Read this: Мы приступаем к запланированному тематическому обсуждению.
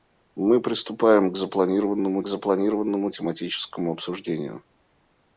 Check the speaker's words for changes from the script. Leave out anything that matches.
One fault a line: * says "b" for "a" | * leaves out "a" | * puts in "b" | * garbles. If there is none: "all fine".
* puts in "запланированному"